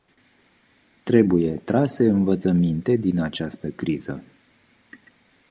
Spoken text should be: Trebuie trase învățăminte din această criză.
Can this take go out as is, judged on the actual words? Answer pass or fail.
pass